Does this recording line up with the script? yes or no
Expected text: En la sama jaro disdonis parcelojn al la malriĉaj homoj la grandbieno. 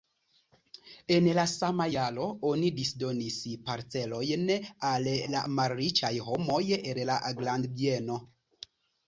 no